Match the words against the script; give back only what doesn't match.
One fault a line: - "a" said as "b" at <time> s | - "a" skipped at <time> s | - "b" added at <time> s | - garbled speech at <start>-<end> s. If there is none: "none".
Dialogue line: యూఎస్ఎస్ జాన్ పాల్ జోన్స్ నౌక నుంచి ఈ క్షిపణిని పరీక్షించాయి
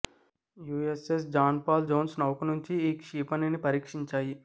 none